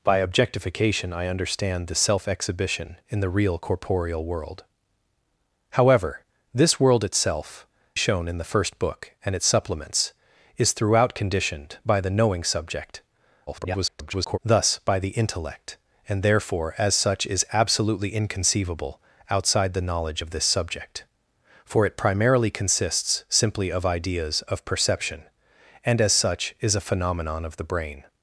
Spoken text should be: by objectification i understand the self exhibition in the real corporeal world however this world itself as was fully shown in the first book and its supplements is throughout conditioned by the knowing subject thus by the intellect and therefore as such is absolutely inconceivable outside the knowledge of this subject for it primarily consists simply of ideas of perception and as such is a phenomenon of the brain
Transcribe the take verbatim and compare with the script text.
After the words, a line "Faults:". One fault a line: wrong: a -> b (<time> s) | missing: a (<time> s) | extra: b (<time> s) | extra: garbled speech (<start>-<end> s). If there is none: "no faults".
by objectification i understand the self exhibition in the real corporeal world however this world itself shown in the first book and its supplements is throughout conditioned by the knowing subject [garbled] thus by the intellect and therefore as such is absolutely inconceivable outside the knowledge of this subject for it primarily consists simply of ideas of perception and as such is a phenomenon of the brain
Faults:
missing: as was fully (7.7 s)
extra: garbled speech (13.5-14.4 s)